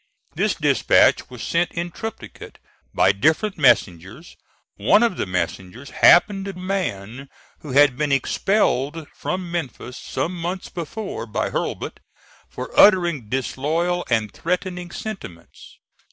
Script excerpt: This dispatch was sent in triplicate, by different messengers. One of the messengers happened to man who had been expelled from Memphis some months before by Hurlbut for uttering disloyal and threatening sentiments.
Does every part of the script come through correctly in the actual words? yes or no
yes